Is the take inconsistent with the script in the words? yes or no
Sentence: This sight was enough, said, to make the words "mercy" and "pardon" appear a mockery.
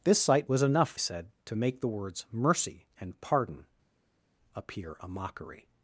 no